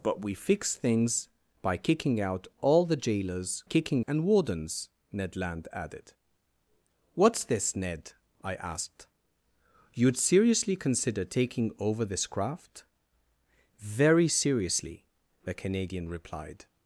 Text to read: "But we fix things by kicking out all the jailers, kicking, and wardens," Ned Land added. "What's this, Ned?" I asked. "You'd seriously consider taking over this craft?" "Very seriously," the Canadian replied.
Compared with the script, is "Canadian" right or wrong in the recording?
right